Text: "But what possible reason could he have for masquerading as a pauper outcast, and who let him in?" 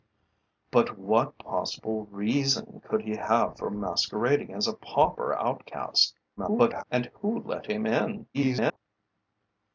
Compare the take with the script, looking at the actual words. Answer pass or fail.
fail